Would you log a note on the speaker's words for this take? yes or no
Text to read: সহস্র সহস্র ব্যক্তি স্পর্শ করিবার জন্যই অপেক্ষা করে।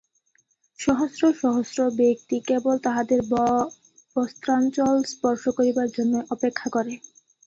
yes